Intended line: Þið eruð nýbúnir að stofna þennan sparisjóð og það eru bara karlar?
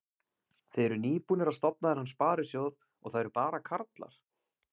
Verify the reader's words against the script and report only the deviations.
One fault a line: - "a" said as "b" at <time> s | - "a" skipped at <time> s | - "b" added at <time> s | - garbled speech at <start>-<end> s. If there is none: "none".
none